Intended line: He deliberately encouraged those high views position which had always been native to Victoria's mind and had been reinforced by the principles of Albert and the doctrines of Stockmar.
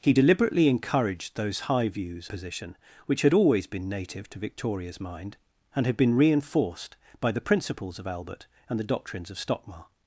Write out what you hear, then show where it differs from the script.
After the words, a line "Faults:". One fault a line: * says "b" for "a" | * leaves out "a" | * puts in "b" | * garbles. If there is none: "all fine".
He deliberately encouraged those high views position which had always been native to Victoria's mind and had been reinforced by the principles of Albert and the doctrines of Stockmar.
Faults:
all fine